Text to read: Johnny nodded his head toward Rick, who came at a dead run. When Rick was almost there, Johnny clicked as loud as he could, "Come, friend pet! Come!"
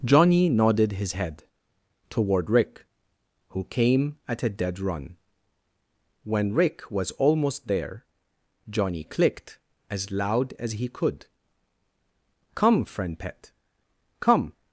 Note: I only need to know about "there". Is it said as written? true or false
true